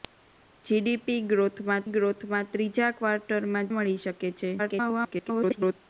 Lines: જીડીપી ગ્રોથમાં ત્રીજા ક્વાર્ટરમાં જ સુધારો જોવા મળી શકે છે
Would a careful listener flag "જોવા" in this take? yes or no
yes